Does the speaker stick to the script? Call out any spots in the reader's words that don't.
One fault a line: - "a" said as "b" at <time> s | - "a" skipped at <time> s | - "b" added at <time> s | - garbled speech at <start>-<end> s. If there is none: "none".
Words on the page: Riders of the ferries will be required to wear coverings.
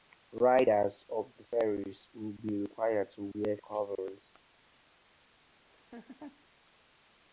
none